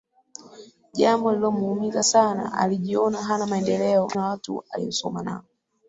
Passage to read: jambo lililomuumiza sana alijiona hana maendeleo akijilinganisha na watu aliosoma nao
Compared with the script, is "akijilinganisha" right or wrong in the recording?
wrong